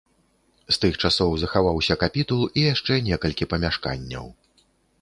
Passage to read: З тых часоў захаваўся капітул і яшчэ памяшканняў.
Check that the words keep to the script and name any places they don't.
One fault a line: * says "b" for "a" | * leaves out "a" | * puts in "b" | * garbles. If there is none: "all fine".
* puts in "некалькі"